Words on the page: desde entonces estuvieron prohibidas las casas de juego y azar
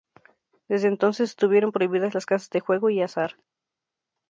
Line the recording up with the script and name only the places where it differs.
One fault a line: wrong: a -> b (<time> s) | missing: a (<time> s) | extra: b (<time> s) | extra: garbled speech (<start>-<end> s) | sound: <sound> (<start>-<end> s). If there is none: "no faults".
no faults